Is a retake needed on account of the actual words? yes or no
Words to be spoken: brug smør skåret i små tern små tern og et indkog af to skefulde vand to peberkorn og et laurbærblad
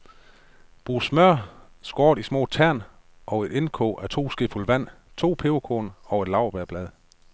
yes